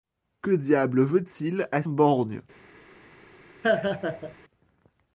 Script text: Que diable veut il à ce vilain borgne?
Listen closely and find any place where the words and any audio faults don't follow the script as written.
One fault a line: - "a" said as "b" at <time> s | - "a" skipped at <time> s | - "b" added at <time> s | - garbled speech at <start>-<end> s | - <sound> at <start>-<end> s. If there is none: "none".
- "ce vilain" skipped at 1.8 s
- laugh at 3.6-4.3 s